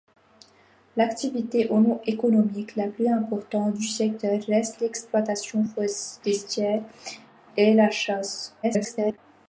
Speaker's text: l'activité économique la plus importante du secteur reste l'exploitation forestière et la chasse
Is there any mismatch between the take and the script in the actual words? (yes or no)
yes